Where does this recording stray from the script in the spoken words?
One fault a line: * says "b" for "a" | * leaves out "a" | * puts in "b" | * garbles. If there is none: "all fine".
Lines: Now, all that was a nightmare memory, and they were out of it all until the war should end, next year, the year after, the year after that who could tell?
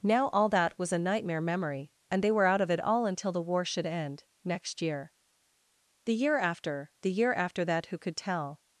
all fine